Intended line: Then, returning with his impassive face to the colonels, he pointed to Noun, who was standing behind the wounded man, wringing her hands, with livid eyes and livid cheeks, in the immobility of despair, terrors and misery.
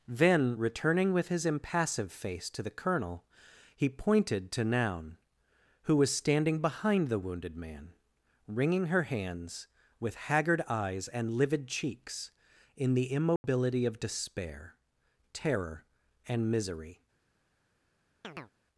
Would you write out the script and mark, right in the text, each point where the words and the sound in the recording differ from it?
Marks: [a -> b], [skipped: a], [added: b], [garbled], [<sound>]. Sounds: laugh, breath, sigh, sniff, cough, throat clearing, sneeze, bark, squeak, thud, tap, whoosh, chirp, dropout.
Then, returning with his impassive face to the [colonels, -> colonel] he pointed to Noun, who was standing behind the wounded man, wringing her hands, with [livid -> haggard] eyes and livid cheeks, in the immobility [dropout] of despair, [terrors -> terror] and misery. [chirp]